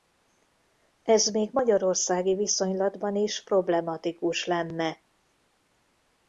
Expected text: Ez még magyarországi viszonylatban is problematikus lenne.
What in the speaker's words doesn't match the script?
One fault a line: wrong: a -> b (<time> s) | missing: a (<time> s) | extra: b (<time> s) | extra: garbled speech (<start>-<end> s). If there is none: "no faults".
no faults